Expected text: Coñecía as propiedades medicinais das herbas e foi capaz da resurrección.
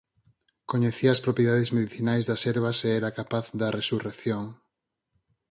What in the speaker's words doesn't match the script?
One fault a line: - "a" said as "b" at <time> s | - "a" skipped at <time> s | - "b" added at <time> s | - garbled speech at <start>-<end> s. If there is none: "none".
- "foi" said as "era" at 3.0 s